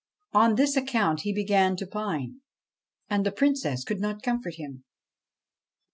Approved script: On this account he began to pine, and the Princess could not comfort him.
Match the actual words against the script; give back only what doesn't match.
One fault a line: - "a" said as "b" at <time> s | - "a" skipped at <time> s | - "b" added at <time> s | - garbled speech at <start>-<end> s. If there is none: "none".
none